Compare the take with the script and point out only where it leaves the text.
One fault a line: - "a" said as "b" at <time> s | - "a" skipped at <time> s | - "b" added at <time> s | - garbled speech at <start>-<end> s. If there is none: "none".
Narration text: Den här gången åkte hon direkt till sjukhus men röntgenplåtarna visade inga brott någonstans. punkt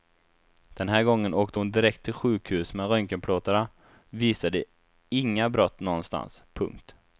none